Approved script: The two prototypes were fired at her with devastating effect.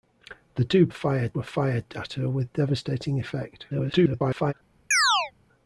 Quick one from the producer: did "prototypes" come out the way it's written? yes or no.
no